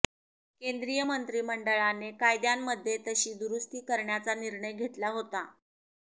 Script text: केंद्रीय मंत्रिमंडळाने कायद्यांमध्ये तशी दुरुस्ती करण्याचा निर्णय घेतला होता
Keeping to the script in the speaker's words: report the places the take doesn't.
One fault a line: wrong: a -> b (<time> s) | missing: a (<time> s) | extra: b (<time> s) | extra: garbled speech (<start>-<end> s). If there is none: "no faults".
no faults